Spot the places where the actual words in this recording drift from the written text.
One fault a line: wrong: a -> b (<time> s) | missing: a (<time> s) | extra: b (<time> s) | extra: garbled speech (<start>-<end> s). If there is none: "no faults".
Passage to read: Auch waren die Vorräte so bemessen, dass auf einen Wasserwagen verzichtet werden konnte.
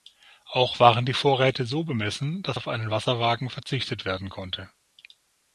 no faults